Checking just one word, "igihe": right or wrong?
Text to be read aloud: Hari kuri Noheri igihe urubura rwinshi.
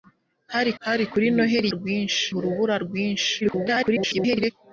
wrong